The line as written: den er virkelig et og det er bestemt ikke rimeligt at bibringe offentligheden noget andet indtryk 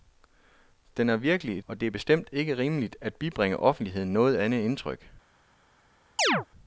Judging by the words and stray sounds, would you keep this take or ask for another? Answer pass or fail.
fail